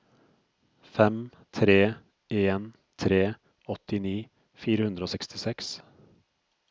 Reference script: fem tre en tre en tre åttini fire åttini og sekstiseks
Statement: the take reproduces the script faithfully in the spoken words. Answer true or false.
false